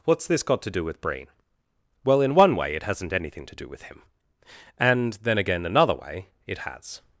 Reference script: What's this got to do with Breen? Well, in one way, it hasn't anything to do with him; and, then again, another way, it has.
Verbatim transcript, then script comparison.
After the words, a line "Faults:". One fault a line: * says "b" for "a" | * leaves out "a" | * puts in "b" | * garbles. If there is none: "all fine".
What's this got to do with Breen? Well, in one way, it hasn't anything to do with him; and, then again, another way, it has.
Faults:
all fine